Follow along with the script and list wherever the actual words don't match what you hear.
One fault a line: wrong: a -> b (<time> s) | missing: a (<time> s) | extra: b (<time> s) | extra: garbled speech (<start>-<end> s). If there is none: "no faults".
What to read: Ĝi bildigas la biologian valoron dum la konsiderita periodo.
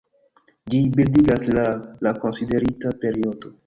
missing: biologian valoron dum (1.6 s)